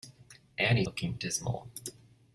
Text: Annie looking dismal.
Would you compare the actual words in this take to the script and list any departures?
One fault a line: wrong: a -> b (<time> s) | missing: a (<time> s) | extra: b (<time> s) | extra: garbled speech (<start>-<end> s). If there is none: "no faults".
no faults